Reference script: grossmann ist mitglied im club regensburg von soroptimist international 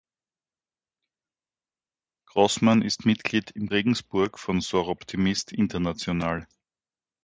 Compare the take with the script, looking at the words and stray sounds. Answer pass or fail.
fail